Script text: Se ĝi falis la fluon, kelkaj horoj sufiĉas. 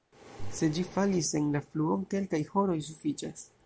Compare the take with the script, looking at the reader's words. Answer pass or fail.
fail